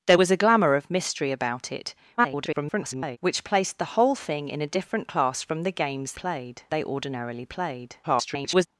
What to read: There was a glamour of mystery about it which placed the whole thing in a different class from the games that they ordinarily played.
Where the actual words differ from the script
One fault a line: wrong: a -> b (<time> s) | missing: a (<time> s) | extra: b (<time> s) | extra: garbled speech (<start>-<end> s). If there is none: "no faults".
extra: garbled speech (2.2-3.2 s)
wrong: that -> played (6.1 s)
extra: garbled speech (8.0-8.7 s)